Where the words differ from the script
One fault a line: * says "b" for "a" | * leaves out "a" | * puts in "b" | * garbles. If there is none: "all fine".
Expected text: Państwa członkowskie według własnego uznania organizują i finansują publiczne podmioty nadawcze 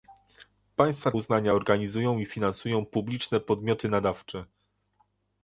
* leaves out "członkowskie według własnego"